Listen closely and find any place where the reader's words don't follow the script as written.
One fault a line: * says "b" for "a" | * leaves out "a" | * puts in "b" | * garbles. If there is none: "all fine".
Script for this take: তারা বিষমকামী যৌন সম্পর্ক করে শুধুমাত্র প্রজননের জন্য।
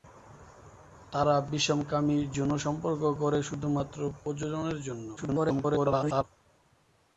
* garbles